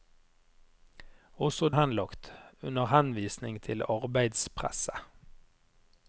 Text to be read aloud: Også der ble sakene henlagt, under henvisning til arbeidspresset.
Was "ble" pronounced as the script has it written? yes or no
no